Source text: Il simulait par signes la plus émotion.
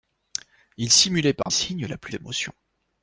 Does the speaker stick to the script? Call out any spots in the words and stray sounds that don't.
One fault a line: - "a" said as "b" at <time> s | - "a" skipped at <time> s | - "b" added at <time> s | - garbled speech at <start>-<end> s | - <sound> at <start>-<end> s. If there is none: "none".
- dropout at 1.4-1.5 s